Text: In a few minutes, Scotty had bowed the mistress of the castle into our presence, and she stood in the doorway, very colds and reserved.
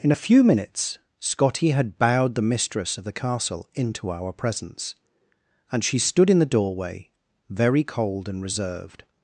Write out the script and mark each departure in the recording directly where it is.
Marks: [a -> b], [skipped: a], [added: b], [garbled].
In a few minutes, Scotty had bowed the mistress of the castle into our presence, and she stood in the doorway, very [colds -> cold] and reserved.